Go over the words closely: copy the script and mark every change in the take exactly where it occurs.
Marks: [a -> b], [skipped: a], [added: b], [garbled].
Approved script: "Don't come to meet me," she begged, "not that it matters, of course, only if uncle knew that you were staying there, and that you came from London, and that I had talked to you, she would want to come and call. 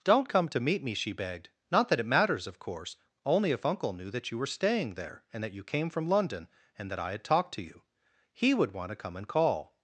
"Don't come to meet me," she begged, "not that it matters, of course, only if uncle knew that you were staying there, and that you came from London, and that I had talked to you, [she -> he] would want to come and call.